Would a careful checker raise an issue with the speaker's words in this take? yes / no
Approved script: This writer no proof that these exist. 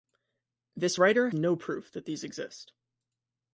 no